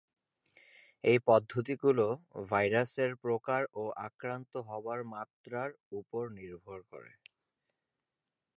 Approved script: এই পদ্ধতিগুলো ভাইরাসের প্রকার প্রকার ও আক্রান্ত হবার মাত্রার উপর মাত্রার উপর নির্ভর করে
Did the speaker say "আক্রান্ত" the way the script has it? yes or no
yes